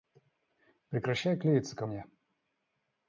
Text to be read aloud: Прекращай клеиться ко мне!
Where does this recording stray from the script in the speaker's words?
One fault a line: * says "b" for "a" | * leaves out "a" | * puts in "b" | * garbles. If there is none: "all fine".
all fine